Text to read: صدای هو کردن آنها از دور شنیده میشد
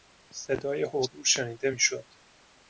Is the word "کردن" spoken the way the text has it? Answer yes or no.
no